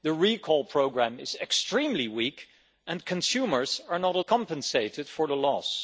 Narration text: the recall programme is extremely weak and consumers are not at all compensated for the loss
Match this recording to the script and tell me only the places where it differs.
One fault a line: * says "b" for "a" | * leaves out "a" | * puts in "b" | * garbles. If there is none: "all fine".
* leaves out "all"